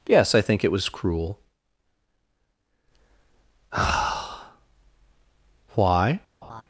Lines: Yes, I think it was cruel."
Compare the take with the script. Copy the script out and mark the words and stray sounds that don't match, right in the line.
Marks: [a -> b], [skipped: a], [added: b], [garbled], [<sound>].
Yes, I think it was cruel." [added: why] [laugh]